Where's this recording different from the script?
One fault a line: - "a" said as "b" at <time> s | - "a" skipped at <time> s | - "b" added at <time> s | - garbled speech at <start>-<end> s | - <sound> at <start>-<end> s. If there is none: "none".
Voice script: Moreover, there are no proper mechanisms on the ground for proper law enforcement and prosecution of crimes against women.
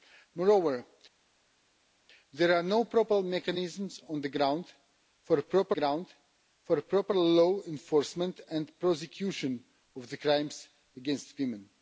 - "ground for proper" added at 5.7 s